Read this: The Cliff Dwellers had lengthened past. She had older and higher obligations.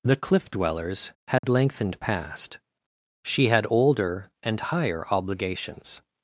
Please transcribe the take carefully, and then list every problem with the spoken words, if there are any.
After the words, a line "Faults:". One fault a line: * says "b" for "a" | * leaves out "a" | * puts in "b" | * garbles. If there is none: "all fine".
The Cliff Dwellers had lengthened past. She had older and higher obligations.
Faults:
all fine